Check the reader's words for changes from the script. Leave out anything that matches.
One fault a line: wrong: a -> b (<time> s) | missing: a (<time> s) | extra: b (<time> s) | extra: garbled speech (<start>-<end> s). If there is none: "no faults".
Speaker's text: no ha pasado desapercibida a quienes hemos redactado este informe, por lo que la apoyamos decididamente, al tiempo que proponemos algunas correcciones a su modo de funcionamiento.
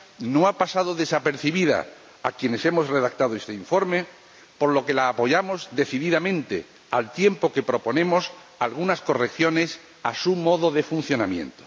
no faults